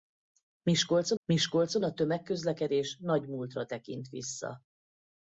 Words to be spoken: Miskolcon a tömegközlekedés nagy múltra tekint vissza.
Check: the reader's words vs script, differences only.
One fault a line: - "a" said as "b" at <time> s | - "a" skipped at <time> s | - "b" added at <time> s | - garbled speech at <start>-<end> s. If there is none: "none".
- "miskolcon" added at 1.3 s